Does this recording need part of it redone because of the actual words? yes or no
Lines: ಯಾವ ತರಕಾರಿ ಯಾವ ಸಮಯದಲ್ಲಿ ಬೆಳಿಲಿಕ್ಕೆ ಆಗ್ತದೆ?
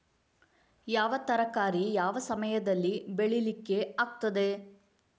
no